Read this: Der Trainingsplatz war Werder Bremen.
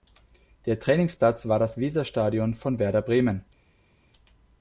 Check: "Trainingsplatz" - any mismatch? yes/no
no